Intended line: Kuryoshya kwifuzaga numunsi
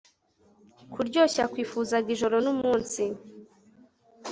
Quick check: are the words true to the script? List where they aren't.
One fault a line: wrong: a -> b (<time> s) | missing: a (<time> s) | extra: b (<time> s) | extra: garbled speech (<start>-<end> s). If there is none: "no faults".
extra: ijoro (2.1 s)